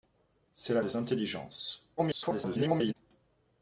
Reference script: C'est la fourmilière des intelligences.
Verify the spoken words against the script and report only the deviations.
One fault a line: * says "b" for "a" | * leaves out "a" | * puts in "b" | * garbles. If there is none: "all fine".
* leaves out "fourmilière"
* garbles